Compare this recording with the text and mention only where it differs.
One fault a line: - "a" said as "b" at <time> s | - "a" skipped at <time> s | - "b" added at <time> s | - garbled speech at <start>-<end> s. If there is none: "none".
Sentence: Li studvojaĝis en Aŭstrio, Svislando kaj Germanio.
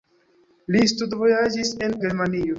- "Aŭstrio Svislando kaj" skipped at 1.9 s